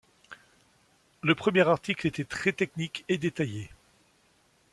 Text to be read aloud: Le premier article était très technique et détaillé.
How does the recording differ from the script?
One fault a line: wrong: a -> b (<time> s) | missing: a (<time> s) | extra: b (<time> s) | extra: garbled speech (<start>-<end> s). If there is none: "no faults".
no faults